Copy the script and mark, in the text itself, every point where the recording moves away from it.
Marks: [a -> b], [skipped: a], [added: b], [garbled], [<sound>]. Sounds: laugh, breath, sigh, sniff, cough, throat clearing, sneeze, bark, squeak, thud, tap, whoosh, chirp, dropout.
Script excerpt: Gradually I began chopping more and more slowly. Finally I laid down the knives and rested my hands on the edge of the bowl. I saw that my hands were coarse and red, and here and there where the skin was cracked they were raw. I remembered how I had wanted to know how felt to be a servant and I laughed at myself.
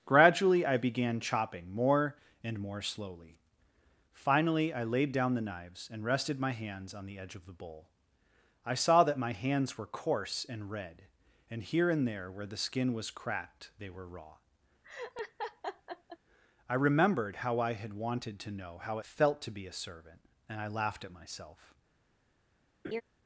Gradually I began chopping more and more slowly. Finally I laid down the knives and rested my hands on the edge of the bowl. I saw that my hands were coarse and red, and here and there where the skin was cracked they were raw. [laugh] I remembered how I had wanted to know how felt to be a servant and I laughed at myself. [laugh]